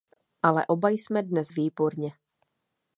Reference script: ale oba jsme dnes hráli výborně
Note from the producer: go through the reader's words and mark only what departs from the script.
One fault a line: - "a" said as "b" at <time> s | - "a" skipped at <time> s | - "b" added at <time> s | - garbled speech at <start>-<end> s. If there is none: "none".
- "hráli" skipped at 1.5 s